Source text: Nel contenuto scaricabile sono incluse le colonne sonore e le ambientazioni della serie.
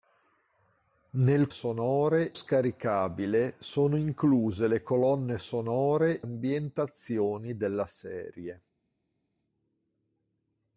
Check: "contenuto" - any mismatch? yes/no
yes